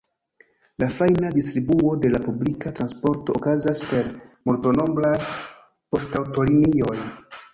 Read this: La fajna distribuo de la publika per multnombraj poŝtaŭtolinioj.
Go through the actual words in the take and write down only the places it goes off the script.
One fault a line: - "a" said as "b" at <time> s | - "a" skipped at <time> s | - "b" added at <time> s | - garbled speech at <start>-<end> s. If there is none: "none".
- "transporto okazas" added at 2.8 s